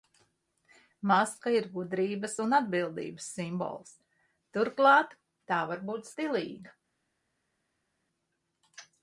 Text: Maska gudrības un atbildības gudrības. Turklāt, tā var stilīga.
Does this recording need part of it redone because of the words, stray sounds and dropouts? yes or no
yes